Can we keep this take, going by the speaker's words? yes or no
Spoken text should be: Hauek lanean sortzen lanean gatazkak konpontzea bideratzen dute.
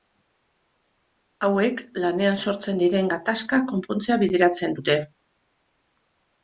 no